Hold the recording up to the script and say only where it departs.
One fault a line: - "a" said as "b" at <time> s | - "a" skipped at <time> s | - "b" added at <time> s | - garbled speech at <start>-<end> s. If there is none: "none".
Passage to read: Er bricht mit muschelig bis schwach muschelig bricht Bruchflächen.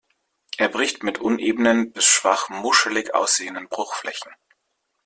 - "muschelig" said as "unebenen" at 1.2 s
- "bricht" said as "aussehenden" at 3.1 s